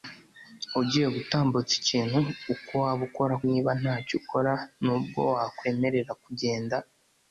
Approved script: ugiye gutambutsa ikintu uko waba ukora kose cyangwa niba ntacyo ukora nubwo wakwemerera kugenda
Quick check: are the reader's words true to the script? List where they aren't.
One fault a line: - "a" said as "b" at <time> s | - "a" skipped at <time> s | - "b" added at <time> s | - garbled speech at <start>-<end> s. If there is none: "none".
- "kose cyangwa" skipped at 3.4 s